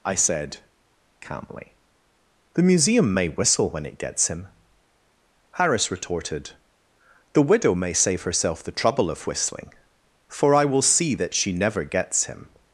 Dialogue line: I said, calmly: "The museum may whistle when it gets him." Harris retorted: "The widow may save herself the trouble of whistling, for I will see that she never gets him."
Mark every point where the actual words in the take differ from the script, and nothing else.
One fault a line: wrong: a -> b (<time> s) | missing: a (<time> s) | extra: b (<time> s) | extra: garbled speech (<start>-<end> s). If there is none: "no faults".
no faults